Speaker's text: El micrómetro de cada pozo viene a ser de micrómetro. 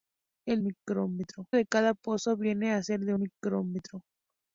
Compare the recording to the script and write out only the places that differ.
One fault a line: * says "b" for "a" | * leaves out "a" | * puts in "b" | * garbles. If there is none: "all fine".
all fine